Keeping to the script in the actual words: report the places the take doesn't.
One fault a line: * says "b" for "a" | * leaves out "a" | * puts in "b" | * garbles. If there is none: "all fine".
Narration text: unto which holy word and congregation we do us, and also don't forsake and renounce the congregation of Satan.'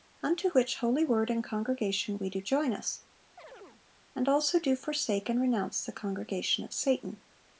* puts in "join"
* says "do" for "don't"